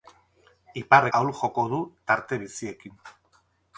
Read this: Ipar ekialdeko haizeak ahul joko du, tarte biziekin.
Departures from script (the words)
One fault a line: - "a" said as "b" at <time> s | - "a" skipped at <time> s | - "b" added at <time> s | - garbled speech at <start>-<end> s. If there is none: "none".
- "ekialdeko haizeak" skipped at 1.1 s